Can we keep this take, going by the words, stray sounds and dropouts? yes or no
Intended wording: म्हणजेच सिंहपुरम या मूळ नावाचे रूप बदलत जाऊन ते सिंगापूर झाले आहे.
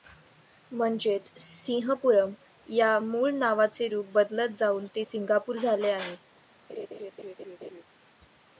no